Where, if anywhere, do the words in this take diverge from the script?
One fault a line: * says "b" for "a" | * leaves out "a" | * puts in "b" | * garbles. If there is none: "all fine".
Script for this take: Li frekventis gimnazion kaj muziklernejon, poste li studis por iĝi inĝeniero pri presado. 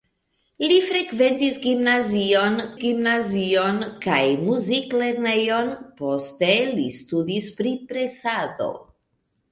* puts in "gimnazion"
* leaves out "por iĝi inĝeniero"